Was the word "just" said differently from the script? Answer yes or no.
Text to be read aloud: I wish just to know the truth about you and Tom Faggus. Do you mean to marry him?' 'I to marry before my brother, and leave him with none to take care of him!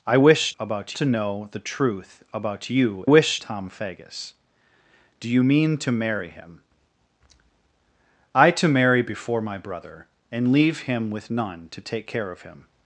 yes